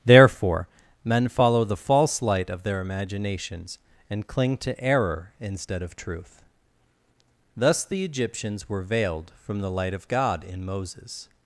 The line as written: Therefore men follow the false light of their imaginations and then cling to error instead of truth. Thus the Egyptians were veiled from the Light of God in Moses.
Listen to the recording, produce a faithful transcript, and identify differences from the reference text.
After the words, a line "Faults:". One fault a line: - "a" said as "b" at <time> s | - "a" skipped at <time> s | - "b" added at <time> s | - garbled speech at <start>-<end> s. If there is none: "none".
Therefore men follow the false light of their imaginations and cling to error instead of truth. Thus the Egyptians were veiled from the Light of God in Moses.
Faults:
- "then" skipped at 4.3 s